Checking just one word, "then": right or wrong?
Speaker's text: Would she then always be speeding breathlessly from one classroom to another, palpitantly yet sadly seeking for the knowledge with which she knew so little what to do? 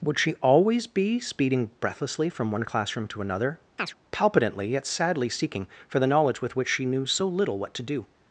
wrong